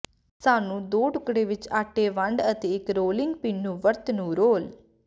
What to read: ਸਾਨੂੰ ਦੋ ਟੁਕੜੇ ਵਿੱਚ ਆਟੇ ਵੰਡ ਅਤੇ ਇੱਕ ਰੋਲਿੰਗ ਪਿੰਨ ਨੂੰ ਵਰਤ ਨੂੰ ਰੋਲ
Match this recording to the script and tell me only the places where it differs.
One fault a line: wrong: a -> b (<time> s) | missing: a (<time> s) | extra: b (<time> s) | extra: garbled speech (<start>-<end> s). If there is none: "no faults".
no faults